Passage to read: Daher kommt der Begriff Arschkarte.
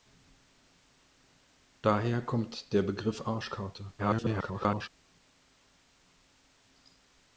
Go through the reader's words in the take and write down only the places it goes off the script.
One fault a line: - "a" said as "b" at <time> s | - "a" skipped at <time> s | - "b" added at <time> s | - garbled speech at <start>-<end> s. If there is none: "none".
- garbled speech at 4.0-4.9 s